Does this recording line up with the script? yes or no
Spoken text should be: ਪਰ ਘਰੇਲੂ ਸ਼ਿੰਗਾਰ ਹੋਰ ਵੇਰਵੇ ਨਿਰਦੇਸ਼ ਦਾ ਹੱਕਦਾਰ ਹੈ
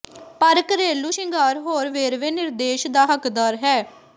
yes